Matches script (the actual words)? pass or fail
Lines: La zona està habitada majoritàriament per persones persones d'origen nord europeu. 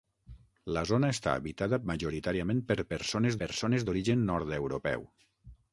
pass